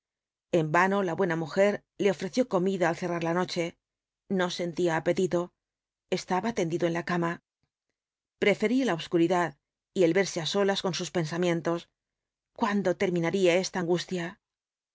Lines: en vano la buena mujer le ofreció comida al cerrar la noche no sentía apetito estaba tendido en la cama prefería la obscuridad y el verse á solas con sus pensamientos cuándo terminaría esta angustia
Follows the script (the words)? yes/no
yes